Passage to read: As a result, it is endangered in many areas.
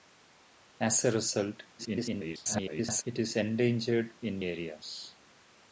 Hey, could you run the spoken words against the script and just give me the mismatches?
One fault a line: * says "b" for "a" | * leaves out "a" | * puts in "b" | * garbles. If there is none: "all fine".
* garbles
* leaves out "many"